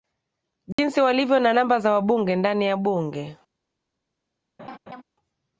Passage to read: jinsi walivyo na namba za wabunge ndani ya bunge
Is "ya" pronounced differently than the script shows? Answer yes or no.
no